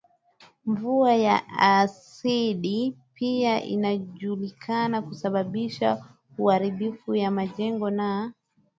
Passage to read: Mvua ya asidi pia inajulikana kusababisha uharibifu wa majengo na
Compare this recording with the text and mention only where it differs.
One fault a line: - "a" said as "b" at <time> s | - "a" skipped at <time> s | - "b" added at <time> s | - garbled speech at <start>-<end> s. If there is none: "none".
none